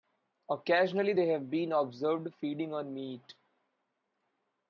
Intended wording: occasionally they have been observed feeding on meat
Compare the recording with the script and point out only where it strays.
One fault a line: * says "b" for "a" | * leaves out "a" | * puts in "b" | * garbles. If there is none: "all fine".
all fine